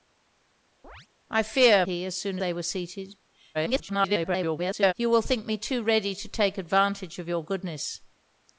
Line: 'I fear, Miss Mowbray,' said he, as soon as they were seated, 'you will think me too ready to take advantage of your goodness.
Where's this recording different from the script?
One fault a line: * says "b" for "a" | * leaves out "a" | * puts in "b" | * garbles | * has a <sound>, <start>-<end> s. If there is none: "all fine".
* has a chirp, 0.8-1.1 s
* leaves out "Miss Mowbray said"
* leaves out "as"
* garbles